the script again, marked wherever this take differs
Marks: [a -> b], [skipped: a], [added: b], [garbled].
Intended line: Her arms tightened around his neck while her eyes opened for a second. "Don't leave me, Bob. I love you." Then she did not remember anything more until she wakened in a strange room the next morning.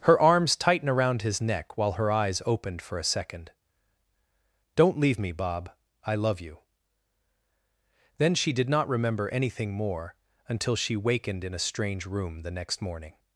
Her arms [tightened -> tighten] around his neck while her eyes opened for a second. "Don't leave me, Bob. I love you." Then she did not remember anything more until she wakened in a strange room the next morning.